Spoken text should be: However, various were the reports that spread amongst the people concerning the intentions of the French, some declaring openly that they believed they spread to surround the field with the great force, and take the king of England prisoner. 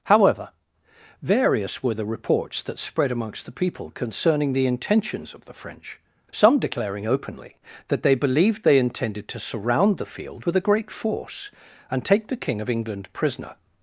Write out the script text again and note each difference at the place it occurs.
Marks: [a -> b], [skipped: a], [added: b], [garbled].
However, various were the reports that spread amongst the people concerning the intentions of the French, some declaring openly that they believed they [spread -> intended] to surround the field with [the -> a] great force, and take the king of England prisoner.